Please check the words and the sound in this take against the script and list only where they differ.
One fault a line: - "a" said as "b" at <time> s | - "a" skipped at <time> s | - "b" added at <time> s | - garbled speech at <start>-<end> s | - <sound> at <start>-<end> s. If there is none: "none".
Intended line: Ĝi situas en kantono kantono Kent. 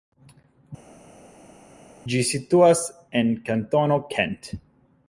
- "kantono" skipped at 4.0 s